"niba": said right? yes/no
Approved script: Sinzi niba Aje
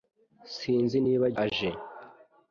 yes